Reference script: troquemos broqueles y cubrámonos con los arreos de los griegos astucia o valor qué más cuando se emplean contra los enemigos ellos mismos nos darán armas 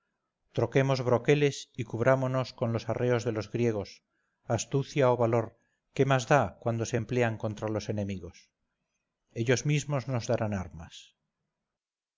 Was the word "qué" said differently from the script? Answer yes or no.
no